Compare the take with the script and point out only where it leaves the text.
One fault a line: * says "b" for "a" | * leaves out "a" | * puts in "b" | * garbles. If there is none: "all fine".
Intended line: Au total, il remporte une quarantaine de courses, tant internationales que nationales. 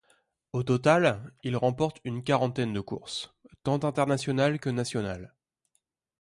all fine